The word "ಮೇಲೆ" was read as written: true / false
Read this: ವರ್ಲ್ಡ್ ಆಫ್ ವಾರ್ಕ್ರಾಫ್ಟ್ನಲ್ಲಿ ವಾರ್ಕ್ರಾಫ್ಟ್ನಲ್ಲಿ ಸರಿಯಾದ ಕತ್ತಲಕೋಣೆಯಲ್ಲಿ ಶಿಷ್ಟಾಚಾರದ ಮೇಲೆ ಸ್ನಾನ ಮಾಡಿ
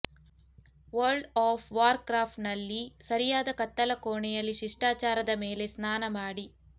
true